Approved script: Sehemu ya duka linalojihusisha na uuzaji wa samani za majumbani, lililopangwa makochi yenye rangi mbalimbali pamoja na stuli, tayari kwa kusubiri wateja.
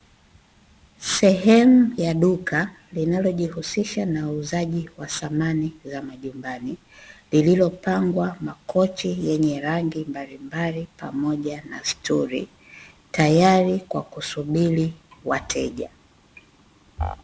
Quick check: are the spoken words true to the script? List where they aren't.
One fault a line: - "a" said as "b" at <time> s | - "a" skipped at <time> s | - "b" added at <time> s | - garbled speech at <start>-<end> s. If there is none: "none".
none